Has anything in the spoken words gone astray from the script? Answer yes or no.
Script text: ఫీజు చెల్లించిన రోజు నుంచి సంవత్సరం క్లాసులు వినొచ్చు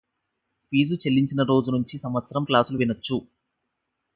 no